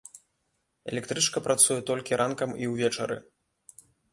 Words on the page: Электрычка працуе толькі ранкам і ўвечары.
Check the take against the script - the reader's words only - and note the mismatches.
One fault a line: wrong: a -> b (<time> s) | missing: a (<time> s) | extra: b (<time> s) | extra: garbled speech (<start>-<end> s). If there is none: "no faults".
no faults